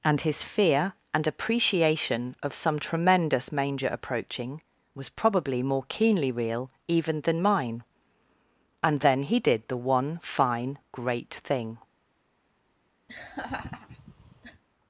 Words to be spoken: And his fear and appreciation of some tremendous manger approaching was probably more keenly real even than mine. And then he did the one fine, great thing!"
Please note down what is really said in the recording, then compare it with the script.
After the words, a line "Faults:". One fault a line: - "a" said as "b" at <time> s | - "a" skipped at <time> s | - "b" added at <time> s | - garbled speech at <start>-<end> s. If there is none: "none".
And his fear and appreciation of some tremendous manger approaching was probably more keenly real even than mine. And then he did the one fine, great thing!"
Faults:
none